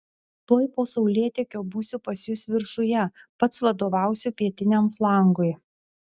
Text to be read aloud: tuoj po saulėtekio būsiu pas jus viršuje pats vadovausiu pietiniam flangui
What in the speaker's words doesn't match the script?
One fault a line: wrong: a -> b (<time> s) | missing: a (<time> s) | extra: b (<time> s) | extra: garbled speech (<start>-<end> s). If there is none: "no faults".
no faults